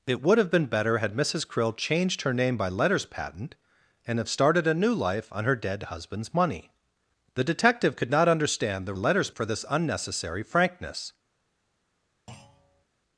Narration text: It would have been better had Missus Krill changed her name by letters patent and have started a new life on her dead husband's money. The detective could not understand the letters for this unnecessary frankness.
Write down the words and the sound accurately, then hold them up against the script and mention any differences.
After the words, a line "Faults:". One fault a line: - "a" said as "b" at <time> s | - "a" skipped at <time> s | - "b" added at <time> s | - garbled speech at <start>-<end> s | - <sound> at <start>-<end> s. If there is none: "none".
It would have been better had Missus Krill changed her name by letters patent and have started a new life on her dead husband's money. The detective could not understand the letters for this unnecessary frankness.
Faults:
- thud at 12.3-12.8 s